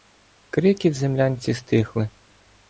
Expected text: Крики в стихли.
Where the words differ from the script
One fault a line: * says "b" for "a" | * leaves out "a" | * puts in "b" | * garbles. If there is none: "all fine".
* puts in "землянці"